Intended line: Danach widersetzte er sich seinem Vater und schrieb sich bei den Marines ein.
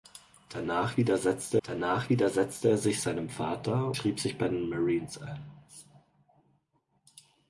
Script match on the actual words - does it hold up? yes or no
no